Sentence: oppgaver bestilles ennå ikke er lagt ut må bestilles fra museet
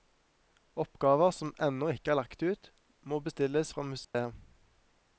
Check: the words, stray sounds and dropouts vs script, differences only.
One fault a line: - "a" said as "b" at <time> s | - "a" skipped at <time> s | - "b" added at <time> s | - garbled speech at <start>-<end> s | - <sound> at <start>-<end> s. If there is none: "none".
- "bestilles" said as "som" at 1.4 s
- dropout at 4.0-4.1 s